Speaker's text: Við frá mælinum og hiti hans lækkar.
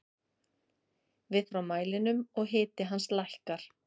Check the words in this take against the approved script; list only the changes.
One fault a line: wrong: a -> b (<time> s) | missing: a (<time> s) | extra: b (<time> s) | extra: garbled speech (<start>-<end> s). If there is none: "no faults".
no faults